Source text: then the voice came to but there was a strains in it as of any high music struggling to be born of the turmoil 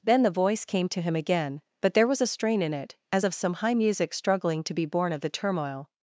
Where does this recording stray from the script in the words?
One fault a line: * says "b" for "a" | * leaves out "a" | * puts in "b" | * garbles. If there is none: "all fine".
* puts in "him again"
* says "strain" for "strains"
* says "some" for "any"